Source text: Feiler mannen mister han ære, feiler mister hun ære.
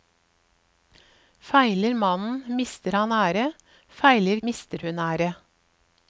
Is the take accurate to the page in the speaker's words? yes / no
yes